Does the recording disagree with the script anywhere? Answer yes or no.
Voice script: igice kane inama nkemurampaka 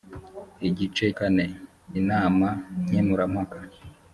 no